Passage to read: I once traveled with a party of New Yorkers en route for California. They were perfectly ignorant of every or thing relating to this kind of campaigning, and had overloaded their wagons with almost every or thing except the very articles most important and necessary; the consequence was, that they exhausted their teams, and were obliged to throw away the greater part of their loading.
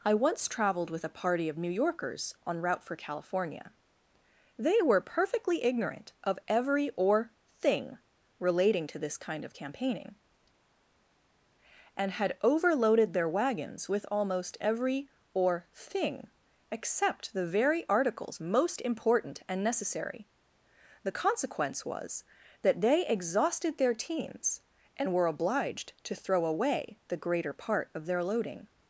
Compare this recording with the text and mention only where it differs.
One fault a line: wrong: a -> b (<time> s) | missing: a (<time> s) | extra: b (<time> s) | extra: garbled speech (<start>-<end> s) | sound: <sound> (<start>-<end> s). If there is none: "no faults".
no faults